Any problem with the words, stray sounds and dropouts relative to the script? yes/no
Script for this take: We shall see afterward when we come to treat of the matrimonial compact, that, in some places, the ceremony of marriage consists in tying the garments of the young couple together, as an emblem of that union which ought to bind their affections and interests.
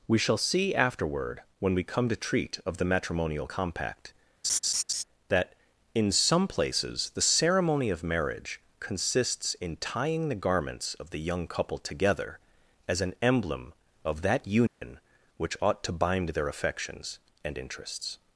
yes